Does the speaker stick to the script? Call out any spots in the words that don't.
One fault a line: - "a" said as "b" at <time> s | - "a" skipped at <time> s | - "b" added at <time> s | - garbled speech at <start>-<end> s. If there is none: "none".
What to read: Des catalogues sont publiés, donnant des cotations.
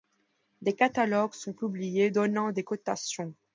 none